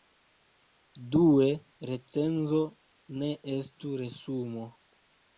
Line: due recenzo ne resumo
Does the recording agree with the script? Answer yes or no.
no